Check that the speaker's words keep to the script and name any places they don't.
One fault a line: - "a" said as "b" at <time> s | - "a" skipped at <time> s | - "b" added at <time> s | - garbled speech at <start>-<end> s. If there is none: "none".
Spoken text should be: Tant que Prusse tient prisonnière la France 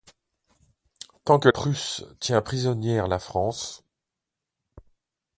none